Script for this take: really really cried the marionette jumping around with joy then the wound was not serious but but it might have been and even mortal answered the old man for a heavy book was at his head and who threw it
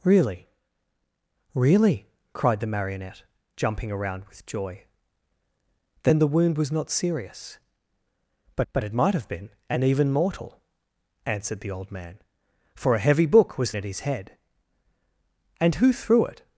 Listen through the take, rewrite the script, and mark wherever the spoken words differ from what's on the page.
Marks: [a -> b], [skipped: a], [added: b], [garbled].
really really cried the marionette jumping around with joy then the wound was not serious but but it might have been and even mortal answered the old man for a heavy book was at his head and who threw it